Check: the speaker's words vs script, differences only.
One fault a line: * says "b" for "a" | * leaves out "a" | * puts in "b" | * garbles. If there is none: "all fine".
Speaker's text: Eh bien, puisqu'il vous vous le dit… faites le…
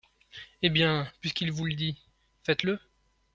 * leaves out "vous"